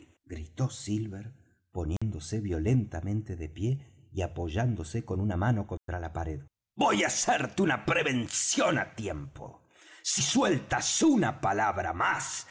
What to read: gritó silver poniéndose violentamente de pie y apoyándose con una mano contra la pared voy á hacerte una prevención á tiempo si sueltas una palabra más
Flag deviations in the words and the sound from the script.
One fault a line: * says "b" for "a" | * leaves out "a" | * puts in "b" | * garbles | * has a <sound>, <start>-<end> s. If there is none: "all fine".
* has a dropout, 2.0-2.0 s
* has a dropout, 5.8-5.9 s